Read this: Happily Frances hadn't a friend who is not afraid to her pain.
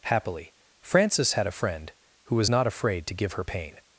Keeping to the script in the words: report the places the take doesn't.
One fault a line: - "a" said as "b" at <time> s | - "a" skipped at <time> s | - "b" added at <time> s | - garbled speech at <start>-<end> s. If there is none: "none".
- "hadn't" said as "had" at 1.3 s
- "is" said as "was" at 2.4 s
- "give" added at 3.1 s